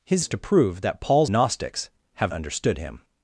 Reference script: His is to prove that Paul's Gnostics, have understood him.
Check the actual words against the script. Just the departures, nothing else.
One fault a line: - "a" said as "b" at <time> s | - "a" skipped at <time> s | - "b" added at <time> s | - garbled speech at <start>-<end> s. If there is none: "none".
none